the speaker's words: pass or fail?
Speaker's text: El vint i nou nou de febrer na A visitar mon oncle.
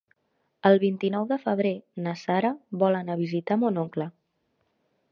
fail